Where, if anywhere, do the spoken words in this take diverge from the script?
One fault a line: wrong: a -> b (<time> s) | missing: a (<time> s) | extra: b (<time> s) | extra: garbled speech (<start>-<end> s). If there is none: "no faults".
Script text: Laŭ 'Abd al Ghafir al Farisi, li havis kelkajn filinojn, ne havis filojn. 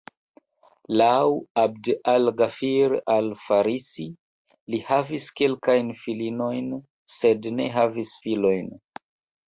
extra: sed (7.2 s)